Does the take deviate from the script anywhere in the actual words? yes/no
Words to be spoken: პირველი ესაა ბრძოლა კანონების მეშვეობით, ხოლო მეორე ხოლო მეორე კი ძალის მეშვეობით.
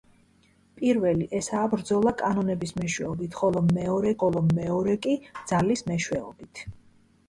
no